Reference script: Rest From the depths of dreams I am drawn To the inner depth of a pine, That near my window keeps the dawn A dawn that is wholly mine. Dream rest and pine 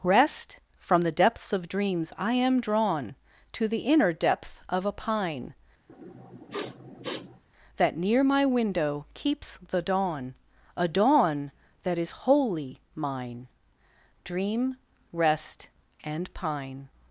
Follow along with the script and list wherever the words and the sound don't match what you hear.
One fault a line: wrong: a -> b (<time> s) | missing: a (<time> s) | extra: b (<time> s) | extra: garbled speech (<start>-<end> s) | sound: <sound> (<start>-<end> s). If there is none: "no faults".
sound: sniff (5.9-7.4 s)